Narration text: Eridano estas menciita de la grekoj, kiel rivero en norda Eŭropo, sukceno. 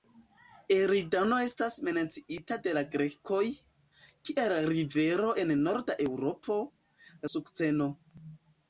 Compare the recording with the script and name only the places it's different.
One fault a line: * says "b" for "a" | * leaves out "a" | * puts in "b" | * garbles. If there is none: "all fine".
all fine